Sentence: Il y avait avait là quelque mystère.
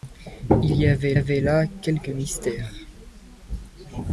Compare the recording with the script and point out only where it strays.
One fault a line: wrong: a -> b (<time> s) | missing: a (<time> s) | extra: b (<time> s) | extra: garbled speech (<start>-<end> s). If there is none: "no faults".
no faults